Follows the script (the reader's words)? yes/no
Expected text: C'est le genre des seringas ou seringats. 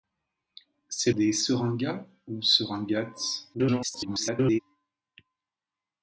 no